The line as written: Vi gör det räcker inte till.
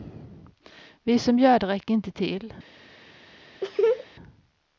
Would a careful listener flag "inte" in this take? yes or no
no